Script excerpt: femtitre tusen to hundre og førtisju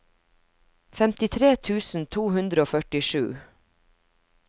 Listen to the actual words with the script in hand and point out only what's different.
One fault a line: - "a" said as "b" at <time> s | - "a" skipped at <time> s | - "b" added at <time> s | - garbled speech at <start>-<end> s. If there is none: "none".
none